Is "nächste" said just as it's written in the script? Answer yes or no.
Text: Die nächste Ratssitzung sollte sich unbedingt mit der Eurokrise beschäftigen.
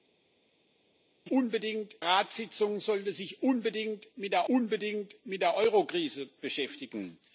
no